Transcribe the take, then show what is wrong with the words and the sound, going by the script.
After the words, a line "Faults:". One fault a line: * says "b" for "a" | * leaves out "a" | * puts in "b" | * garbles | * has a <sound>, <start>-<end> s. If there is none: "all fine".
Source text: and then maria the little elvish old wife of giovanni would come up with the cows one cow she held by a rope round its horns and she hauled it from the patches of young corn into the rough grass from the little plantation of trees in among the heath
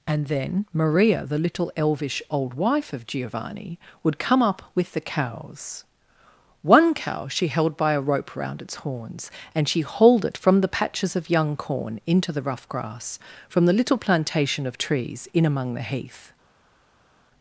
and then maria the little elvish old wife of giovanni would come up with the cows one cow she held by a rope round its horns and she hauled it from the patches of young corn into the rough grass from the little plantation of trees in among the heath
Faults:
all fine